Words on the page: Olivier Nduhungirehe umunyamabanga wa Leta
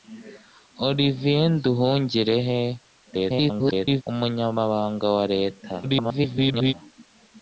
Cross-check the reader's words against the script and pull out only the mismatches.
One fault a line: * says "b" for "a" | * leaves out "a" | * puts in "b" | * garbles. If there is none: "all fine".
* garbles
* garbles